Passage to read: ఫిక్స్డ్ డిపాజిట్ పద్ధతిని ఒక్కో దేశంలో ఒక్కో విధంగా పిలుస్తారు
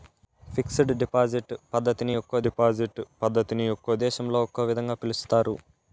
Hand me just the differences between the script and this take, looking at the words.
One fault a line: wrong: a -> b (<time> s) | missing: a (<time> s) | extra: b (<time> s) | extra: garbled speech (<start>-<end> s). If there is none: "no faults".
extra: డిపాజిట్ పద్ధతిని ఒక్కో (2.4 s)